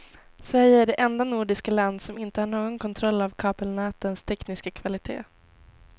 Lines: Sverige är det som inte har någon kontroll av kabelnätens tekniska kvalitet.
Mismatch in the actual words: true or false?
true